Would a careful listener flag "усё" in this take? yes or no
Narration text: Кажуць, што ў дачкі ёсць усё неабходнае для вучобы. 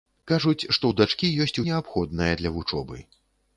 yes